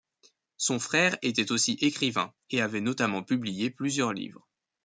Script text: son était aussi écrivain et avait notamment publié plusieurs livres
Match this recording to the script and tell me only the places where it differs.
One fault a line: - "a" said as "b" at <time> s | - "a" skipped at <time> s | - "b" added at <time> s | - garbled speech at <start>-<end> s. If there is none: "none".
- "frère" added at 0.8 s